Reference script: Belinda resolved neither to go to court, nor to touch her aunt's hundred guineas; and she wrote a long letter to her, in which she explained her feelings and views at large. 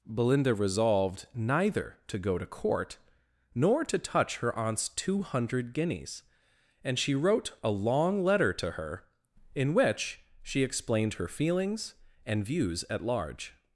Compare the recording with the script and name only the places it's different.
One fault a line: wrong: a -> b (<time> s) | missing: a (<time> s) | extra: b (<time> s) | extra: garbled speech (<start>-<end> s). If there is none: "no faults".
extra: two (4.9 s)